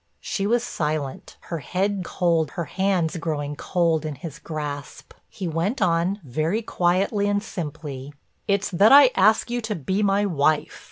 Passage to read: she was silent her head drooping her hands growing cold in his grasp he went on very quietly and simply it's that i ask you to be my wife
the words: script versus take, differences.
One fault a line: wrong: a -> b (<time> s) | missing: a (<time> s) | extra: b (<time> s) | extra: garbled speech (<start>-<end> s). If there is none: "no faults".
wrong: drooping -> cold (2.0 s)